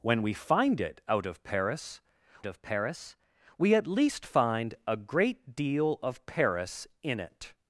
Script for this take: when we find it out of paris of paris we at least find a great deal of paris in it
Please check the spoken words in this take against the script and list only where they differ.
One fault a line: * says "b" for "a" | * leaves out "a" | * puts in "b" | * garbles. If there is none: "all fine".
all fine